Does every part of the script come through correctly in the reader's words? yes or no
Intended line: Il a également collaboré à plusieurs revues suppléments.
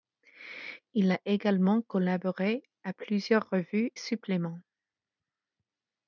yes